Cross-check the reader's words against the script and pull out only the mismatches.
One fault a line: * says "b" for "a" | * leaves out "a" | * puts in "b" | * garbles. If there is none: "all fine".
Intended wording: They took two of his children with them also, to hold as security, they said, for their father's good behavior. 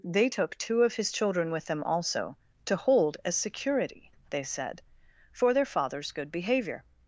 all fine